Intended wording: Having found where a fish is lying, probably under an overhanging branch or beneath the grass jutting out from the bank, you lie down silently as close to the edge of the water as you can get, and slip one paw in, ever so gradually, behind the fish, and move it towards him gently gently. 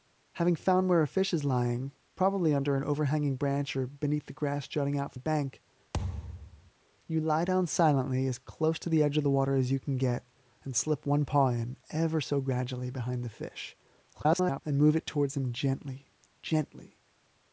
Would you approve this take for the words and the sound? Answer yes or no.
no